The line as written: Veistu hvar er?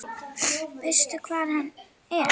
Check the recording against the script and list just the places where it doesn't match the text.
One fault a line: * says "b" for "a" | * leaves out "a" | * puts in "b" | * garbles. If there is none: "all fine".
* puts in "hann"